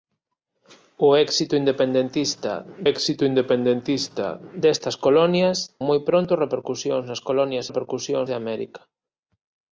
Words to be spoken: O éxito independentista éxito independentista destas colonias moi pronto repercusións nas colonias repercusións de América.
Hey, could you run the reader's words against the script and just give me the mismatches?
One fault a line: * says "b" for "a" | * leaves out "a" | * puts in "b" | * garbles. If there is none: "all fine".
all fine